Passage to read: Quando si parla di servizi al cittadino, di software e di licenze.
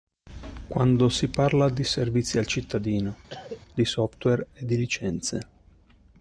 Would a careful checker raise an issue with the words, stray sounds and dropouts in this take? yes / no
yes